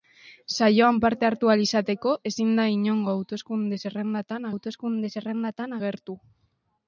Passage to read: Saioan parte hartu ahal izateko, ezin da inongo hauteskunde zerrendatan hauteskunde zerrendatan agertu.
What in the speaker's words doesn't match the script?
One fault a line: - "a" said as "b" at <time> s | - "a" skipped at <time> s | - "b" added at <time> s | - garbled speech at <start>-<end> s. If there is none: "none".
none